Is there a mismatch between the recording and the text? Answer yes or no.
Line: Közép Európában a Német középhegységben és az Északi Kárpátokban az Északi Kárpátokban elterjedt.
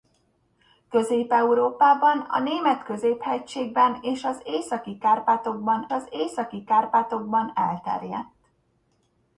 no